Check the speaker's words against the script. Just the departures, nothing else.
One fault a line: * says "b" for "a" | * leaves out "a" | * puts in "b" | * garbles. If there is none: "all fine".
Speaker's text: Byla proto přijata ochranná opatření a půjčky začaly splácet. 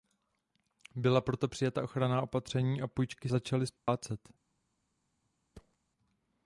all fine